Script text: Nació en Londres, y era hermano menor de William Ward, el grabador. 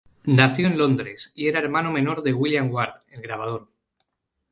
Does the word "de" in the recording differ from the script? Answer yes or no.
no